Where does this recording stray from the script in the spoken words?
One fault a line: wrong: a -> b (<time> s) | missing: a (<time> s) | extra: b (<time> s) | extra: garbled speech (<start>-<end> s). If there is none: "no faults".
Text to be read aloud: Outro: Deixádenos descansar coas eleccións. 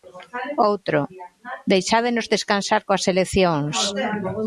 no faults